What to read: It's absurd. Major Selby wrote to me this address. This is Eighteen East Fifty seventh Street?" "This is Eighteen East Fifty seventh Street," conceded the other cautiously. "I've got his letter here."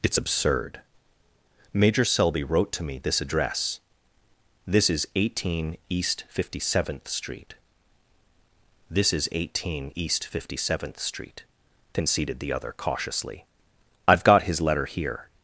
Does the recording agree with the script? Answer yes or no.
yes